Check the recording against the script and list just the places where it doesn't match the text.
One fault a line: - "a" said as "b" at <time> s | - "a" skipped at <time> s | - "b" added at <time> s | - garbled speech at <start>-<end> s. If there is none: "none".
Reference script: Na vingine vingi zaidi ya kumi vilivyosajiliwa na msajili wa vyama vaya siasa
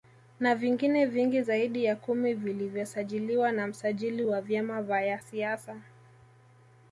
none